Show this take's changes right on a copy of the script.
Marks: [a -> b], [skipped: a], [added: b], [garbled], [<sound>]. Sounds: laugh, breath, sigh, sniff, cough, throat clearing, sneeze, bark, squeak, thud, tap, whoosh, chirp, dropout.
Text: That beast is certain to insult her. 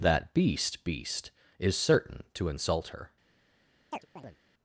That beast [added: beast] is certain to insult her. [chirp]